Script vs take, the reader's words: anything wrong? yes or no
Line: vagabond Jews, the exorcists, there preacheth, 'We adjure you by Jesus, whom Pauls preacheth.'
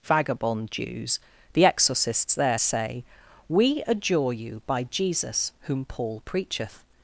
yes